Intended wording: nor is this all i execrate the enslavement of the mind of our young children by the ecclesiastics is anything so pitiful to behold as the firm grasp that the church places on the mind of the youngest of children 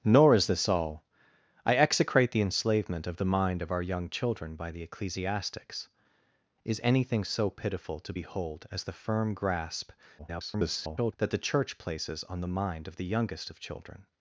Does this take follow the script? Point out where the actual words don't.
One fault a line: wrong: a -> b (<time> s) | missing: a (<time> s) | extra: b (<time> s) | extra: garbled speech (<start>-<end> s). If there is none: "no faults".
extra: garbled speech (10.2-11.1 s)